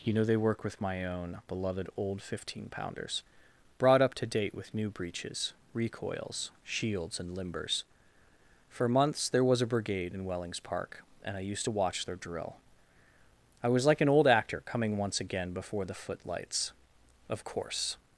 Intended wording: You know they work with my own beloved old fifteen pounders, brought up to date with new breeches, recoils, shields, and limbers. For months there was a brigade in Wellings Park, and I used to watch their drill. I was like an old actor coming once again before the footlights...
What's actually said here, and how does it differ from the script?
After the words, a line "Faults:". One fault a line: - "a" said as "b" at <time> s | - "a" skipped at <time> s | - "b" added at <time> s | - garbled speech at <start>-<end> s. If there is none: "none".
You know they work with my own beloved old fifteen pounders, brought up to date with new breeches, recoils, shields, and limbers. For months there was a brigade in Wellings Park, and I used to watch their drill. I was like an old actor coming once again before the footlights... Of course
Faults:
- "Of course" added at 17.3 s